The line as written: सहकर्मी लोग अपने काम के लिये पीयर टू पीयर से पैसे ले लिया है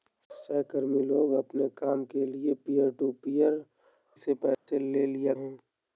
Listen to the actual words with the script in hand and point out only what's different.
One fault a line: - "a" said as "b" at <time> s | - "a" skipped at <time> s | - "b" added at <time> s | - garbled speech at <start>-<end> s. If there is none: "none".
none